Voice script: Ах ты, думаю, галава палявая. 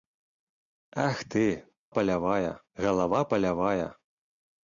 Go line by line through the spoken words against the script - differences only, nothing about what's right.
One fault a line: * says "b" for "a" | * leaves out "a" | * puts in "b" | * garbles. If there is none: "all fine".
* says "палявая" for "думаю"